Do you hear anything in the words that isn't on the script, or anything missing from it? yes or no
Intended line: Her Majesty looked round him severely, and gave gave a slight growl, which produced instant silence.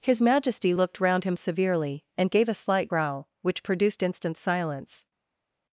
yes